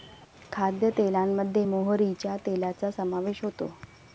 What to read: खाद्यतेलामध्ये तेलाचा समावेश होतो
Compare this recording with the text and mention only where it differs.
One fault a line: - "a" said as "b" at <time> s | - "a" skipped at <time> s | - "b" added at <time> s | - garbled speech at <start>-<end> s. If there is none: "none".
- "मोहरीच्या" added at 1.7 s